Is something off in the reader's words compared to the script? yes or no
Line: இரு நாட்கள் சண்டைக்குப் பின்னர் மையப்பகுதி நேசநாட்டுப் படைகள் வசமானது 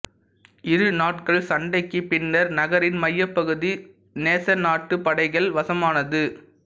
yes